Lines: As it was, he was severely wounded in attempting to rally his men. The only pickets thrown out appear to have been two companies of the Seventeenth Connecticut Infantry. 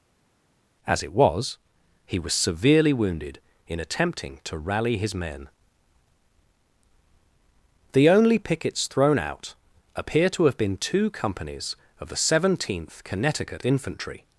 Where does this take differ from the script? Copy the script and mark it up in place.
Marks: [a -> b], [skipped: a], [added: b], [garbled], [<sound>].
As it was, he was severely wounded in attempting to rally his men. The only pickets thrown out appear to have been two companies of the Seventeenth Connecticut Infantry.